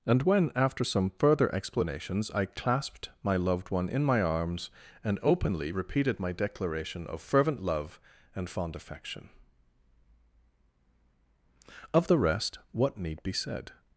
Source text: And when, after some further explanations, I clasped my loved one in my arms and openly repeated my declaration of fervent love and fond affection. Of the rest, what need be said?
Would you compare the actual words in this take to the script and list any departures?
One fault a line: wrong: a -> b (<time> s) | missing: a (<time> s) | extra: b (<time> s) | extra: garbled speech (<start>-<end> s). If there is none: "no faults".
no faults